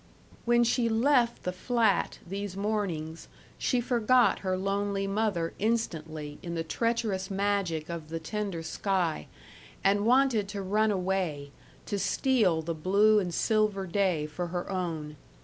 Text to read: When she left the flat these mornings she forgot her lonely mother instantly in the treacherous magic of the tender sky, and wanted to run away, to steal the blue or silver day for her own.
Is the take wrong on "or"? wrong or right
wrong